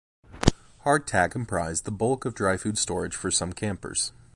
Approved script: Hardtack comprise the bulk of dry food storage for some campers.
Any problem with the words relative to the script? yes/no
no